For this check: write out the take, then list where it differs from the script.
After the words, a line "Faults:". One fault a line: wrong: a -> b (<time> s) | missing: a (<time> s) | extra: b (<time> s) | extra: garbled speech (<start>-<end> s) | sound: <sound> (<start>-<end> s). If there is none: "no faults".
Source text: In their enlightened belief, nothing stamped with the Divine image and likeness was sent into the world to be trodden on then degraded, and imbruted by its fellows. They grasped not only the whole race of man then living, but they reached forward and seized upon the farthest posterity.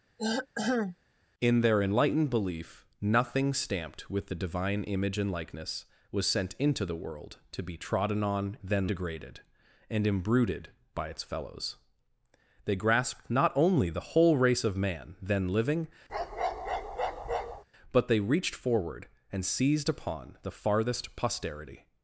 In their enlightened belief, nothing stamped with the Divine image and likeness was sent into the world to be trodden on then degraded, and imbruted by its fellows. They grasped not only the whole race of man then living, but they reached forward and seized upon the farthest posterity.
Faults:
sound: throat clearing (0.2-1.0 s)
sound: bark (16.1-17.6 s)